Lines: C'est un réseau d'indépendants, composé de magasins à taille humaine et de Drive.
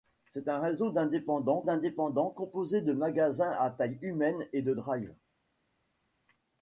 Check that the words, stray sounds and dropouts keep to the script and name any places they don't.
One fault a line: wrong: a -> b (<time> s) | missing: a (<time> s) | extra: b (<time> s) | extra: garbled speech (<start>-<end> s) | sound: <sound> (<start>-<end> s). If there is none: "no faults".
extra: d'indépendants (1.6 s)